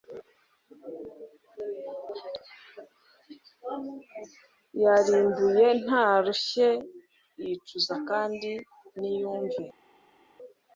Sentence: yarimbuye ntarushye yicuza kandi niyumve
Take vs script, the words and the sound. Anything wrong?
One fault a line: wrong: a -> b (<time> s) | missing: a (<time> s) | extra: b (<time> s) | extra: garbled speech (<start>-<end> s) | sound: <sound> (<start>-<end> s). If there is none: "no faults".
no faults